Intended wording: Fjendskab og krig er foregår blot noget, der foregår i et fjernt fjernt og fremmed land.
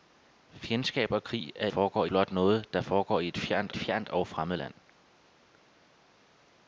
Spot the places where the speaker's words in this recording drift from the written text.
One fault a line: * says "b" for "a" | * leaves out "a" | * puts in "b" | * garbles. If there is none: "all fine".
all fine